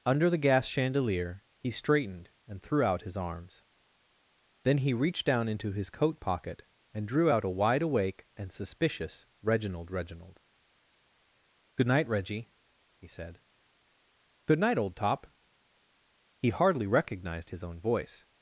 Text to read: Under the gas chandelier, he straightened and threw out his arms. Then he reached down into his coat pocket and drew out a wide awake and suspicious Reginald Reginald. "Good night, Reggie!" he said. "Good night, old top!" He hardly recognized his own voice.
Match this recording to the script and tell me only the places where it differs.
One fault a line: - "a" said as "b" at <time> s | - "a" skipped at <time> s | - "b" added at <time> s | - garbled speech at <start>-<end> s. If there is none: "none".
none